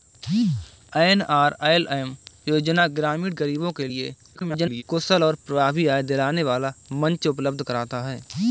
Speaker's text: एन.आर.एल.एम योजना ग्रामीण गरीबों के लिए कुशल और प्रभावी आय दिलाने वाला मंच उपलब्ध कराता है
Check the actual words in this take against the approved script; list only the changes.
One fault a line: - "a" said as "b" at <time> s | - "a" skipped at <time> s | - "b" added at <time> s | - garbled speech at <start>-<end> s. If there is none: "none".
- garbled speech at 4.4-4.8 s